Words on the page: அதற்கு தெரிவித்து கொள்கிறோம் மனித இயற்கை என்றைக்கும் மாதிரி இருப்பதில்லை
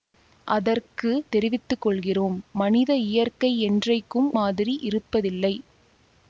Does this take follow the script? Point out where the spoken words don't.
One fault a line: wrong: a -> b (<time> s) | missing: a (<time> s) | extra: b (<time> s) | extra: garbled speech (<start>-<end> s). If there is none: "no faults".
no faults